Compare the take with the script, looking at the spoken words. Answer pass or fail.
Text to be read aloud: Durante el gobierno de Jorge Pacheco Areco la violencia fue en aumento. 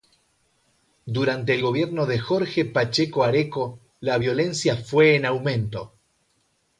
pass